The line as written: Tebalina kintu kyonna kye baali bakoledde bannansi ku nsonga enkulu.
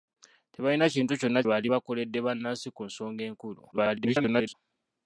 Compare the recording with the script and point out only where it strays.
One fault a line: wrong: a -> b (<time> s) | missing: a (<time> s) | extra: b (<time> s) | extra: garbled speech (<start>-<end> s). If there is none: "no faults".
missing: kye (1.4 s)
extra: garbled speech (3.7-4.5 s)